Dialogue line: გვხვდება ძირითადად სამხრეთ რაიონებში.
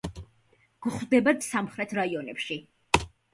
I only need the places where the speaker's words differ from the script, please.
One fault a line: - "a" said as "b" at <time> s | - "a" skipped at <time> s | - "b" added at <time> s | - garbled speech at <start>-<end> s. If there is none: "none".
- "ძირითადად" skipped at 1.3 s